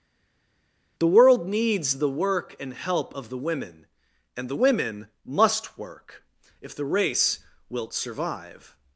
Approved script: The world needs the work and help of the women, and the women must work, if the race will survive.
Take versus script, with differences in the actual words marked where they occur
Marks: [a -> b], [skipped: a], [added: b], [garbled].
The world needs the work and help of the women, and the women must work, if the race [will -> wilt] survive.